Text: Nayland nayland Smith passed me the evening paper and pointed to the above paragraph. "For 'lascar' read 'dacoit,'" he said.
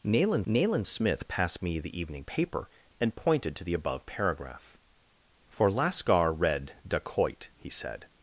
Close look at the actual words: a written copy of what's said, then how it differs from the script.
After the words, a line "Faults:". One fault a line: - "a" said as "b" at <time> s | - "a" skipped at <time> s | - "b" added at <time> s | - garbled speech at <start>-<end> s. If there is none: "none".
Nayland nayland Smith passed me the evening paper and pointed to the above paragraph. "For 'lascar' read 'dacoit,'" he said.
Faults:
none